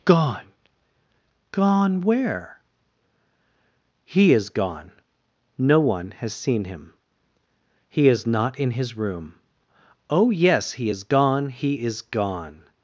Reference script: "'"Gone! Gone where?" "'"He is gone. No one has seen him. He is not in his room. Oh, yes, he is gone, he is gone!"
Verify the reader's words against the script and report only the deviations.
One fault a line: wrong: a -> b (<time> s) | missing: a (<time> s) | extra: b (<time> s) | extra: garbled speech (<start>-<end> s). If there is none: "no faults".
no faults